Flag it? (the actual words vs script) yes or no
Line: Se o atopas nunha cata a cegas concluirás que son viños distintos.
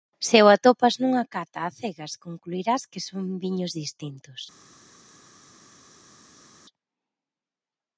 no